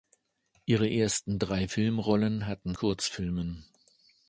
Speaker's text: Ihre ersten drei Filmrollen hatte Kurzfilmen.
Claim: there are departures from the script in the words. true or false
false